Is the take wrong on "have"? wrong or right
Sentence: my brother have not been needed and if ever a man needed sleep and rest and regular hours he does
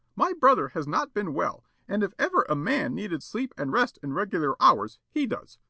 wrong